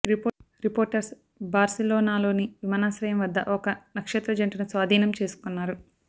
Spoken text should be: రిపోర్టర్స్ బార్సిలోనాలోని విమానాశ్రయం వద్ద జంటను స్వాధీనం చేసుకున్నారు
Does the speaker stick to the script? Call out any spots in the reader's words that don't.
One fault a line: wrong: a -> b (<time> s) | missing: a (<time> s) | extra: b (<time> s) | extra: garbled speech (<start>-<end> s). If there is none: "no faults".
extra: ఒక నక్షత్ర (3.5 s)